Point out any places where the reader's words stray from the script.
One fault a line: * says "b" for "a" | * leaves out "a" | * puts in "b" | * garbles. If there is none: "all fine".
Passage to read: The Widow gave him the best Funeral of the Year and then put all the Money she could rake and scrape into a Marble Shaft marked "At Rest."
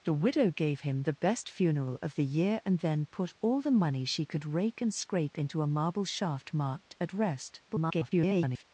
* garbles